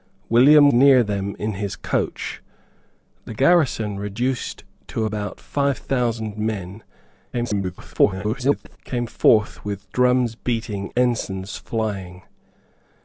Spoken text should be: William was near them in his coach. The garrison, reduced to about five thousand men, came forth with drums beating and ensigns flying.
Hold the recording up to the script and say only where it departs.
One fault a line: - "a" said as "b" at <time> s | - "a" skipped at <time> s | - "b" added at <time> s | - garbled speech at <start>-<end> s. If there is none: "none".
- "was" skipped at 0.7 s
- garbled speech at 7.3-8.8 s
- "and" skipped at 10.9 s